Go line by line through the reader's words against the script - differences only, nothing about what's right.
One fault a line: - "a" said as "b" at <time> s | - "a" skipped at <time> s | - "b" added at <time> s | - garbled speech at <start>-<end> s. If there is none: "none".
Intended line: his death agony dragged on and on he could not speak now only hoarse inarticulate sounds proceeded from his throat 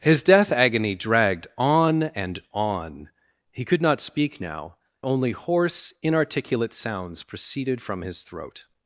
none